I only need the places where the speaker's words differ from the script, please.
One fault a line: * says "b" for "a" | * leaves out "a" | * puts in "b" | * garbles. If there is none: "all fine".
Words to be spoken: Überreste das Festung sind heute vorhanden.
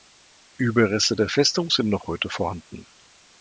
* says "der" for "das"
* puts in "noch"